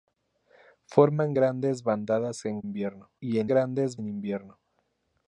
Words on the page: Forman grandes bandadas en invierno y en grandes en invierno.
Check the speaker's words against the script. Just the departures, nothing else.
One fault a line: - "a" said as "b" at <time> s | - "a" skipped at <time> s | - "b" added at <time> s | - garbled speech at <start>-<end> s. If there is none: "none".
none